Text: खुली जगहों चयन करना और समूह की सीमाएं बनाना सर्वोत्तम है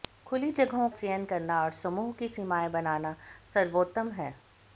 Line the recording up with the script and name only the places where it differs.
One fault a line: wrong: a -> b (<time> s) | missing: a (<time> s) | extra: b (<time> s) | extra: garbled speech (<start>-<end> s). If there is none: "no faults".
no faults